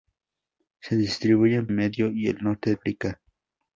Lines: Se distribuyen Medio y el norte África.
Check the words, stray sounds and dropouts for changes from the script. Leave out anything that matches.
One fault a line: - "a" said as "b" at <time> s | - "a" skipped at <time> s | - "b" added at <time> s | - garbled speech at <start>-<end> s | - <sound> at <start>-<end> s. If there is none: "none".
none